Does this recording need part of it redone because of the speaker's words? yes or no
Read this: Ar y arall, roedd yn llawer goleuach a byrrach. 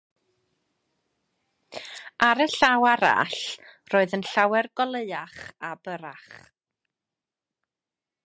yes